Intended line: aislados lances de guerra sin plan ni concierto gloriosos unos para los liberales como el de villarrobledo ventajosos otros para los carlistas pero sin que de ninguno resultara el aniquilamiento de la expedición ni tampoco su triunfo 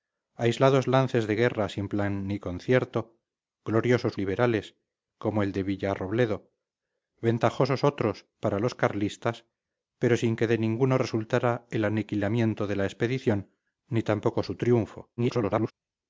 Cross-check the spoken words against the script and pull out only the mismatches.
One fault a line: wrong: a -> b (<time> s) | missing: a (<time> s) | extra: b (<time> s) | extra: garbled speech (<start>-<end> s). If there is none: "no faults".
missing: unos para los (4.2 s)
extra: garbled speech (15.2-15.7 s)